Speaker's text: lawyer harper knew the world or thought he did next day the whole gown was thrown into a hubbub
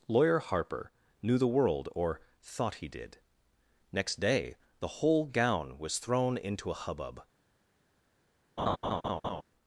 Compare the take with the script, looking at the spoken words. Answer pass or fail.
pass